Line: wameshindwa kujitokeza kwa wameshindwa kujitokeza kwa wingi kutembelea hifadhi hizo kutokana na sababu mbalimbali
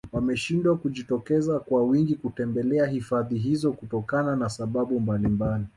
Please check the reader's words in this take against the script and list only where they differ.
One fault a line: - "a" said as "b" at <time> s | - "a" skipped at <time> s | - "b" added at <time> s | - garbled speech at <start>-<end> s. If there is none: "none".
- "wameshindwa kujitokeza kwa" skipped at 1.8 s